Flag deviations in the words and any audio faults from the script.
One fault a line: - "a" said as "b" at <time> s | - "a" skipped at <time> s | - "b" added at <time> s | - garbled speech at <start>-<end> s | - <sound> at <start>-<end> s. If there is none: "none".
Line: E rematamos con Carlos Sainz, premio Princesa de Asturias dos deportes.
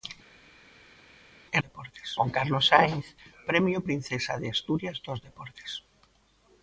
- "rematamos" said as "deportes" at 1.7 s